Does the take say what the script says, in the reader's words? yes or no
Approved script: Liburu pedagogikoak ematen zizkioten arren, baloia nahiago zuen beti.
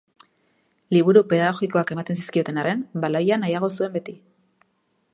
yes